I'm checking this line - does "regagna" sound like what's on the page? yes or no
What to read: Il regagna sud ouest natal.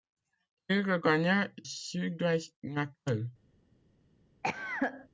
yes